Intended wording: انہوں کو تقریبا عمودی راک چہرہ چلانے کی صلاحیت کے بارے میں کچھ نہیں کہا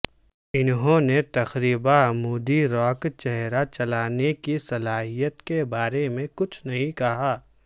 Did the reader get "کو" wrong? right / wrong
wrong